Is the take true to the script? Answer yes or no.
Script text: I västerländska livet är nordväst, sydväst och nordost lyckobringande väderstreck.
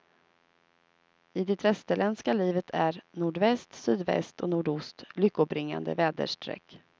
no